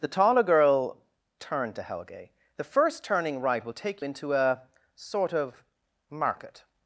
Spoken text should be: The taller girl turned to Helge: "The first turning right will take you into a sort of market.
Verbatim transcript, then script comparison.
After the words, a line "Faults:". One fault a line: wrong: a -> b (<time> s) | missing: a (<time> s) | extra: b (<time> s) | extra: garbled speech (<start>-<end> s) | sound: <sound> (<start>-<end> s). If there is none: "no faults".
The taller girl turned to Helge: "The first turning right will take into a sort of market.
Faults:
missing: you (4.0 s)